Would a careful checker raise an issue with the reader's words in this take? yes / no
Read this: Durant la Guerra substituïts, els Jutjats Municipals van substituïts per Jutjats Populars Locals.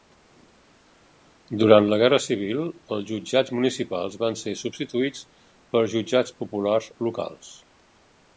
yes